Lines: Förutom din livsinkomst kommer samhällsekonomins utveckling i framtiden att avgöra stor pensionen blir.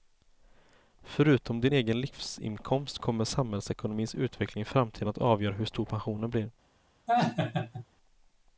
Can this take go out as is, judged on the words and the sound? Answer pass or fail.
fail